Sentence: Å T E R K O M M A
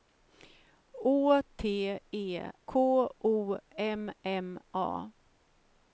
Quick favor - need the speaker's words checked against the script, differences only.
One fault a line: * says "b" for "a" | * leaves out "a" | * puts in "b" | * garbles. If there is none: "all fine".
* leaves out "R"